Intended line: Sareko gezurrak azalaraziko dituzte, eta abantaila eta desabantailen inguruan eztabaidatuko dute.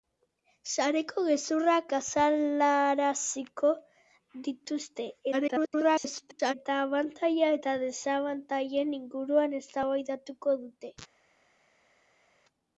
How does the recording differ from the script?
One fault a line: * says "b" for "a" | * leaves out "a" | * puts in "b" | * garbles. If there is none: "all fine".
* garbles